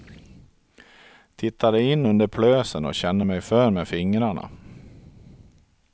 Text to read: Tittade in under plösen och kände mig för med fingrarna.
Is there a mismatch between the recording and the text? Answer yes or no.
no